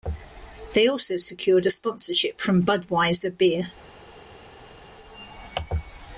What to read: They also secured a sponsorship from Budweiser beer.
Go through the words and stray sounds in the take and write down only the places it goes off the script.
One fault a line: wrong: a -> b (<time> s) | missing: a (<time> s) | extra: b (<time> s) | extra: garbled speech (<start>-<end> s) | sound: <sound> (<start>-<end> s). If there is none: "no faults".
no faults